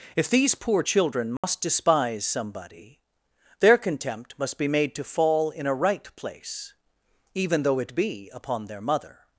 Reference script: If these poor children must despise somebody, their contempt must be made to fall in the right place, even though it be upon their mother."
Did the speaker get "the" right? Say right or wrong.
wrong